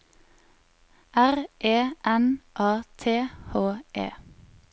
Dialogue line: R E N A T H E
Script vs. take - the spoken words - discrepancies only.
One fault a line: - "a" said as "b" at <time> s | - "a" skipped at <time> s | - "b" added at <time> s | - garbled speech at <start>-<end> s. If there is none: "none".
none